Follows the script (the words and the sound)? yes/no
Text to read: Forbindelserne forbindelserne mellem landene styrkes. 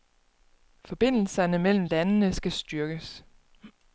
no